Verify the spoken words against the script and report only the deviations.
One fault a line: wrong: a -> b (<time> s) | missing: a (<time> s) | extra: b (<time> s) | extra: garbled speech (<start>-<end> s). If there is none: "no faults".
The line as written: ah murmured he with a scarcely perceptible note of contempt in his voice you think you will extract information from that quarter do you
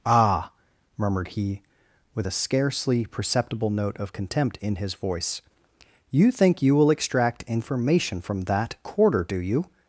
no faults